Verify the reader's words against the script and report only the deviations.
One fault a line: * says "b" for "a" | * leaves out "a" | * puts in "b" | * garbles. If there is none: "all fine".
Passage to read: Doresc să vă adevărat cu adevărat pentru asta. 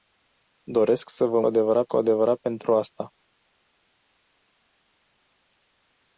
all fine